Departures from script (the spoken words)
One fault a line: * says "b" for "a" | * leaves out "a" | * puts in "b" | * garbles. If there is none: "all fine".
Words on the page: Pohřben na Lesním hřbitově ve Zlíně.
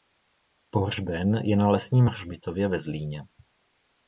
* puts in "je"